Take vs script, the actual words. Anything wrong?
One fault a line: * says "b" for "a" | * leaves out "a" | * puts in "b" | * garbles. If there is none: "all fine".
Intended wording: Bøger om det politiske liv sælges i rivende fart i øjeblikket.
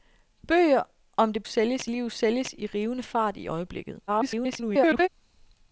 * says "sælges" for "politiske"
* garbles